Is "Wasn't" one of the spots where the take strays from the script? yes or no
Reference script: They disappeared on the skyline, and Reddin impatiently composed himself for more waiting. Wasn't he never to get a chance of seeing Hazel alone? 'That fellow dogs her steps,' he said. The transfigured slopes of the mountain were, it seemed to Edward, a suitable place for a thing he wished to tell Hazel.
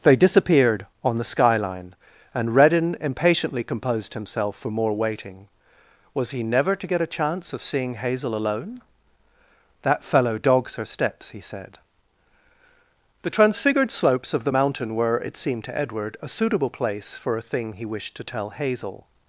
yes